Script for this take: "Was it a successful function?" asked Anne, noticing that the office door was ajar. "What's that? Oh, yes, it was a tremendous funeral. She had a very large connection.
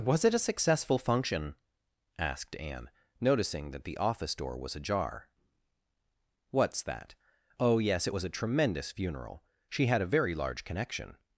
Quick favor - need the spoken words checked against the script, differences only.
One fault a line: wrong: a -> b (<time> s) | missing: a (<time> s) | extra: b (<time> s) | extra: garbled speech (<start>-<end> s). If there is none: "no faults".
no faults